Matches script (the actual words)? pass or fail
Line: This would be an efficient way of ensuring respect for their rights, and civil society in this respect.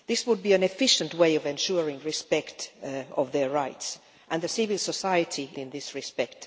pass